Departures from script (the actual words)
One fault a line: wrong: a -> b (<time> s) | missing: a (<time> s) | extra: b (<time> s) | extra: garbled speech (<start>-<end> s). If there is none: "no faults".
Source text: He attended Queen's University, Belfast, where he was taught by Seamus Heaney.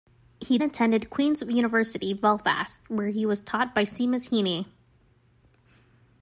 no faults